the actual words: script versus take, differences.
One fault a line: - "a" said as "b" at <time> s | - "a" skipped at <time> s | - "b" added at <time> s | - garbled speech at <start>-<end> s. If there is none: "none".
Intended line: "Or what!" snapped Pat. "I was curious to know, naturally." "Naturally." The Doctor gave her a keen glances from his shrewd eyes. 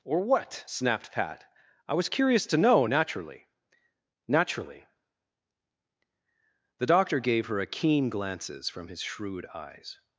none